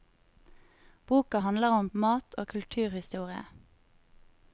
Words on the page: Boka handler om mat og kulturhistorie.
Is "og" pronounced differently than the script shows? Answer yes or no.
no